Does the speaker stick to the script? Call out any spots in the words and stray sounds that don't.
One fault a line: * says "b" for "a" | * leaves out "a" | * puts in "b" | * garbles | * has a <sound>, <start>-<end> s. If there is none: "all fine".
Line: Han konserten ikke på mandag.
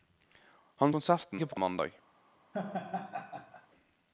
* has a laugh, 2.5-3.7 s